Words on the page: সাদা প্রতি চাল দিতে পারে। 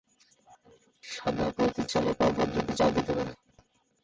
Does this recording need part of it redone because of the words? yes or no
yes